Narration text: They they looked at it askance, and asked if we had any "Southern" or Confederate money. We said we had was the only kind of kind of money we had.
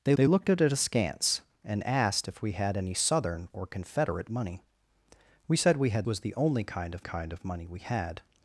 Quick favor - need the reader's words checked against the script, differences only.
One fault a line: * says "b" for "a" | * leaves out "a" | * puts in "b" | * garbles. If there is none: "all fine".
all fine